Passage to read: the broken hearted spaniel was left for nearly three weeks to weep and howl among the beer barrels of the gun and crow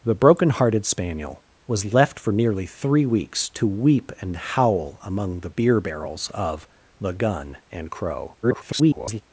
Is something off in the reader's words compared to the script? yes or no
yes